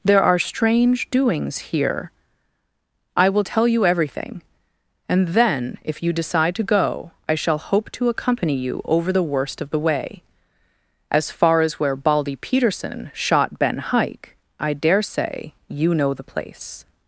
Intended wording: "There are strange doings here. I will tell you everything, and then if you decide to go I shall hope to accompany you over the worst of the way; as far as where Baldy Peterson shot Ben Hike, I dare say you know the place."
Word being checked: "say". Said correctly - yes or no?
yes